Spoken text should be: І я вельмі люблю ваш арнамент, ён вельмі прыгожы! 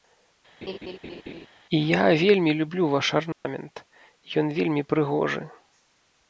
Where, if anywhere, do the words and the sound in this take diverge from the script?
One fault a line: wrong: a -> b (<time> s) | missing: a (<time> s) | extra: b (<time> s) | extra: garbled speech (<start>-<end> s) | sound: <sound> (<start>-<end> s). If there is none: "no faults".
sound: laugh (0.6-1.5 s)
sound: dropout (3.3-3.4 s)